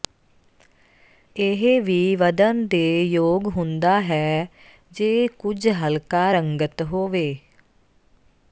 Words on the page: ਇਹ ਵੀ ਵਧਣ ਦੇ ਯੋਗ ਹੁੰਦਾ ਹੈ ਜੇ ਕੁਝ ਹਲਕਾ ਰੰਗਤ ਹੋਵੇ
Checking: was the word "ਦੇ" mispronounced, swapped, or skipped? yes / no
no